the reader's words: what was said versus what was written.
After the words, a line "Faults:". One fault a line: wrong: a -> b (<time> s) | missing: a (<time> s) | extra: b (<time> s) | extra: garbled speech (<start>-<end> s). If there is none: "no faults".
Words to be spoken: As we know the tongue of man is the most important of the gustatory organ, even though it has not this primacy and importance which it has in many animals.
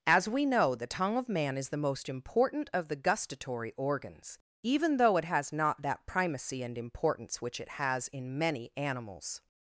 As we know the tongue of man is the most important of the gustatory organs, even though it has not that primacy and importance which it has in many animals.
Faults:
wrong: organ -> organs (3.8 s)
wrong: this -> that (5.8 s)